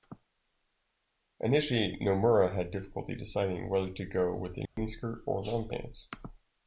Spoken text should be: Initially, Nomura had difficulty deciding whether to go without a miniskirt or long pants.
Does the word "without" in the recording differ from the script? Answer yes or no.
yes